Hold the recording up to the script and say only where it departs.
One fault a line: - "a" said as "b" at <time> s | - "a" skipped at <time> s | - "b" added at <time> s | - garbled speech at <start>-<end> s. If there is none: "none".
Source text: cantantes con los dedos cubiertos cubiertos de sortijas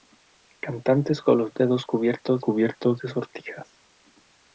none